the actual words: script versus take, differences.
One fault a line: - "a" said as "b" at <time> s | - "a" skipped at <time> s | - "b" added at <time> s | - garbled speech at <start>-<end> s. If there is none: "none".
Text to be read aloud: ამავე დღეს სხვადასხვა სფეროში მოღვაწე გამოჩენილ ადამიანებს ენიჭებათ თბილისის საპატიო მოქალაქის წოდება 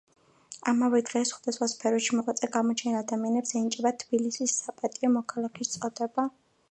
none